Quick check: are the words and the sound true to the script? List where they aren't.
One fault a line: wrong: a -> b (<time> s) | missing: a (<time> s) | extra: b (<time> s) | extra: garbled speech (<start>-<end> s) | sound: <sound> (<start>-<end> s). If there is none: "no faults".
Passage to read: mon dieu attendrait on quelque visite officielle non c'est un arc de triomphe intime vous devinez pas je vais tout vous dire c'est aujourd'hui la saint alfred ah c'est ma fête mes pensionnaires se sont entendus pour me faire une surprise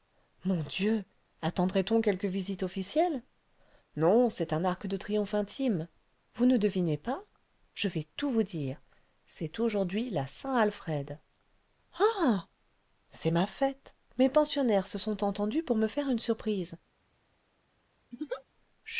extra: ne (6.5 s)
sound: laugh (18.1-18.4 s)